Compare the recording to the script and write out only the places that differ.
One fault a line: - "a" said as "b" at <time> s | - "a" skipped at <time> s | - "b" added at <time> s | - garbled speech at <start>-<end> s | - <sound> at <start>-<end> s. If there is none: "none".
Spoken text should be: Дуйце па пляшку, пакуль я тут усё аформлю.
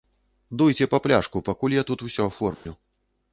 - dropout at 2.5-2.7 s